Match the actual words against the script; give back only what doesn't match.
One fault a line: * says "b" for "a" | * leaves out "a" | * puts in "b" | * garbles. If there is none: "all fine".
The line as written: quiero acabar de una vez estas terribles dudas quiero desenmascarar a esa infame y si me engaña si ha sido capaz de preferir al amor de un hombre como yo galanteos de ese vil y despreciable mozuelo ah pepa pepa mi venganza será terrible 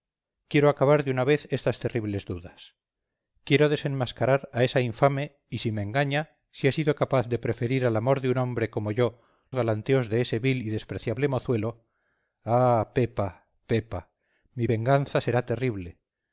all fine